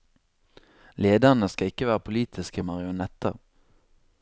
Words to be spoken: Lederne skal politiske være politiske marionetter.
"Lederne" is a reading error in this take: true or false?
false